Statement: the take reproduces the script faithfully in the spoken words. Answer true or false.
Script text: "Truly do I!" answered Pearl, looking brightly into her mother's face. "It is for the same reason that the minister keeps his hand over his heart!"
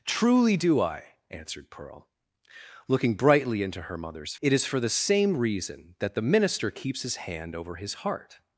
false